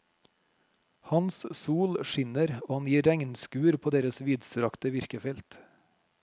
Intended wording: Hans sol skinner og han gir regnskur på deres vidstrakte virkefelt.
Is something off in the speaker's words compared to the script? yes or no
no